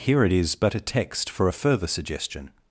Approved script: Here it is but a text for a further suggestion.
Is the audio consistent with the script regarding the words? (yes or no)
yes